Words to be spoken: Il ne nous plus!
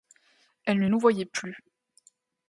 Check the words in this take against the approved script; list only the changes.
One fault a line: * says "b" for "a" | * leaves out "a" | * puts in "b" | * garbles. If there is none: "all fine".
* says "Elle" for "Il"
* puts in "voyait"